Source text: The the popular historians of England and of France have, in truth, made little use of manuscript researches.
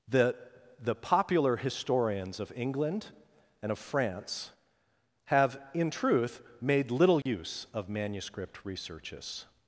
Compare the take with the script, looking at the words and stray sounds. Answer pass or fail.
fail